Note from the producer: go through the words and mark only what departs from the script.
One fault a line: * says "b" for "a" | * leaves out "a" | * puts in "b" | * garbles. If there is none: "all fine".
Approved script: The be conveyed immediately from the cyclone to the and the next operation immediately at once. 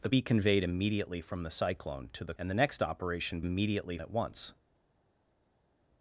all fine